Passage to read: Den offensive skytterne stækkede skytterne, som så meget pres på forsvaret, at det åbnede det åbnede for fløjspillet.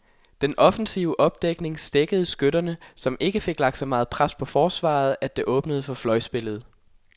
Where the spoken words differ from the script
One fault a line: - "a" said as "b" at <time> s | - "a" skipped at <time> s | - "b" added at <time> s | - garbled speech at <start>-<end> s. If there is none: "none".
- "skytterne" said as "opdækning" at 1.2 s
- "ikke fik lagt" added at 3.2 s
- "det åbnede" skipped at 5.8 s